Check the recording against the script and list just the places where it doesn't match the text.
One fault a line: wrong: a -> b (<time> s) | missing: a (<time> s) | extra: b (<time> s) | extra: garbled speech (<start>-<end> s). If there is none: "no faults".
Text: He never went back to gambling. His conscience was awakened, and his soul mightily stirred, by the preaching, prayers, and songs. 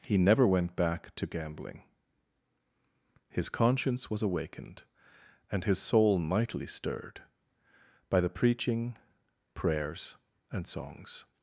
no faults